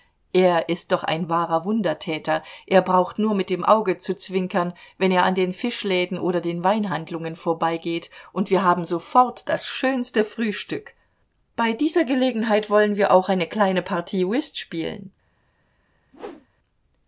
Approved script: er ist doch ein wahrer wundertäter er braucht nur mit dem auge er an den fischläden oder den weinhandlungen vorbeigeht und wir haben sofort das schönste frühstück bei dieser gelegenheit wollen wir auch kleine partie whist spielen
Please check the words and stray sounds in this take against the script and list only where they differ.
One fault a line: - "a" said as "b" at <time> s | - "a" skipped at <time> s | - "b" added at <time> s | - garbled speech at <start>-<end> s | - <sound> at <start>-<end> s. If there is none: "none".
- "zu zwinkern wenn" added at 4.0 s
- "eine" added at 13.3 s
- whoosh at 16.1-16.5 s